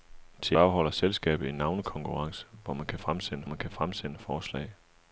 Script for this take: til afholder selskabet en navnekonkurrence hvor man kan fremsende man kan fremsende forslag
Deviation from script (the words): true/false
false